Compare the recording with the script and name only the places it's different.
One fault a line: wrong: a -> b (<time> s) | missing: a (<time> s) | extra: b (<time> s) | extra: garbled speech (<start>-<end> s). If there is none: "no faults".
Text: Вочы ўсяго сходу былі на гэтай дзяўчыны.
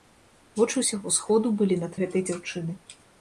no faults